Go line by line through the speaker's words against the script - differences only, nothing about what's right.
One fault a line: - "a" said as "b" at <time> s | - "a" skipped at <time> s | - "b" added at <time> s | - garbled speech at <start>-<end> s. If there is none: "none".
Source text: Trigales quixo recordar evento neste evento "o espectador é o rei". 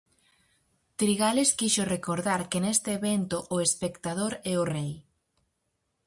- "evento" said as "que" at 2.5 s